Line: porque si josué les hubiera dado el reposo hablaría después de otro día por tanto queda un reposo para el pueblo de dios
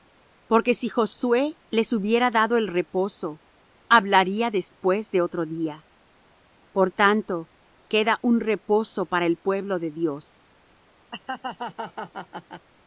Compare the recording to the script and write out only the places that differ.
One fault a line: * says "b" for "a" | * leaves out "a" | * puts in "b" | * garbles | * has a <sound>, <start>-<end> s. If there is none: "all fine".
* has a laugh, 11.1-12.7 s